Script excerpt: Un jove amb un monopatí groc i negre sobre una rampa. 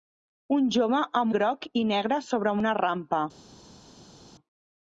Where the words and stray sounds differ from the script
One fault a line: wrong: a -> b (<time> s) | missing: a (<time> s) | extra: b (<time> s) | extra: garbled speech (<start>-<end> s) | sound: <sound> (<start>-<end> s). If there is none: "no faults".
missing: un monopatí (1.4 s)